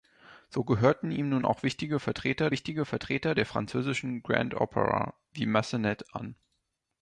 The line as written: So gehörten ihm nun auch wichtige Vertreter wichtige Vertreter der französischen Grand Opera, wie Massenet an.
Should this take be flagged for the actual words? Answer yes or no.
no